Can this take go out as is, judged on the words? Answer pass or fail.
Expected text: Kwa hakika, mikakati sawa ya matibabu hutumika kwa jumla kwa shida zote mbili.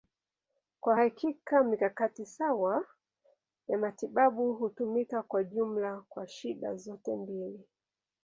pass